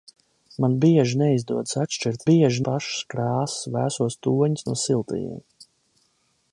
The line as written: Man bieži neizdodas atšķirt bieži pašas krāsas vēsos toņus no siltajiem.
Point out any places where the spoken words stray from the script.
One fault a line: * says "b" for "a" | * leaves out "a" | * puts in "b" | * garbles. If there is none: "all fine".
all fine